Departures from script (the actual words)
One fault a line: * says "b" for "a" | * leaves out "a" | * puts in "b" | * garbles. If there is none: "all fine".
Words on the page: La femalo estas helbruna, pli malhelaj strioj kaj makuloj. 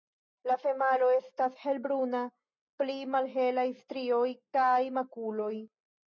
all fine